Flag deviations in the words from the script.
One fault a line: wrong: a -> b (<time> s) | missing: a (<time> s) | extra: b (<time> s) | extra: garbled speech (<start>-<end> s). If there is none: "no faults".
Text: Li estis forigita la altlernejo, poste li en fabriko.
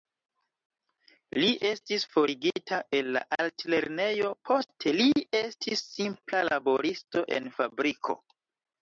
extra: el (3.0 s)
extra: estis simpla laboristo (5.4 s)